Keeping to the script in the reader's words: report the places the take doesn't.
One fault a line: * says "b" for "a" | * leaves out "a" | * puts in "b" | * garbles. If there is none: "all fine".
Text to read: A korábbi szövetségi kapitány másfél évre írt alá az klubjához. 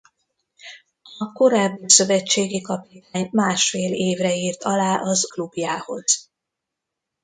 all fine